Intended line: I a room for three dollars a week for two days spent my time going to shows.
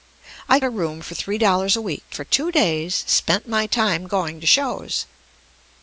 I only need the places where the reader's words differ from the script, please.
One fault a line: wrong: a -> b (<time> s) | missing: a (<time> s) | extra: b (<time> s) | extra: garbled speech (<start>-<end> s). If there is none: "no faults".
no faults